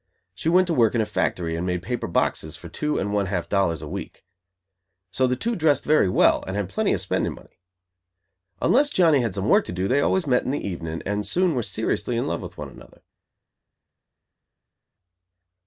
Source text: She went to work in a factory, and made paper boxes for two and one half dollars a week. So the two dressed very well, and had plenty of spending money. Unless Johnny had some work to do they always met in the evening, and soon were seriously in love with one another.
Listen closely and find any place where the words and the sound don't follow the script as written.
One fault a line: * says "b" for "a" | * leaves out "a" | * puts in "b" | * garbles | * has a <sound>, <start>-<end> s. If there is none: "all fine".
all fine